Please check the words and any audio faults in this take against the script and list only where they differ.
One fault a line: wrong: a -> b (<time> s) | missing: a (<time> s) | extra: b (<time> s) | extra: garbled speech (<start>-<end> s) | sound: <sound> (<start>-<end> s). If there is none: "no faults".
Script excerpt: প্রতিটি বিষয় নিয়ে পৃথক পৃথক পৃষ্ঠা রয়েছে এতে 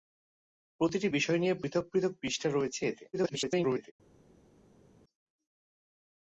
extra: garbled speech (3.1-3.9 s)